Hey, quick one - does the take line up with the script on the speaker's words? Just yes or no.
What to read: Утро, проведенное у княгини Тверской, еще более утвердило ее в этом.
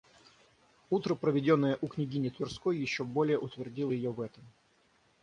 yes